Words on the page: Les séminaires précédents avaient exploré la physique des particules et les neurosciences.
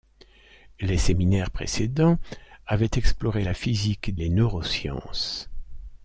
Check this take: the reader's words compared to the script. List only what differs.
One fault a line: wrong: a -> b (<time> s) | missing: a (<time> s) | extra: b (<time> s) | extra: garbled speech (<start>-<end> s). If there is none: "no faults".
missing: des particules et (4.1 s)